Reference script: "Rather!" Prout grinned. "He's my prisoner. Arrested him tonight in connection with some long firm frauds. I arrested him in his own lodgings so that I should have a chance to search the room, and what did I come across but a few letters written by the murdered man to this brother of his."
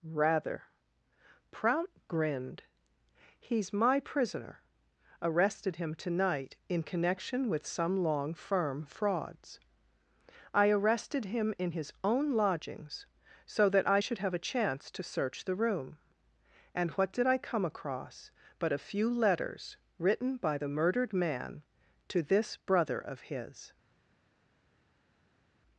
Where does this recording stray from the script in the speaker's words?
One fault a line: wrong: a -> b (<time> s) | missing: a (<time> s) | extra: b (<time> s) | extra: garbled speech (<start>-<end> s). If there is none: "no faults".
no faults